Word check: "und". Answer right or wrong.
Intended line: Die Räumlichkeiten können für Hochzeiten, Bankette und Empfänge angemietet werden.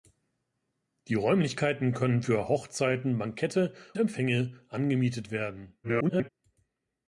wrong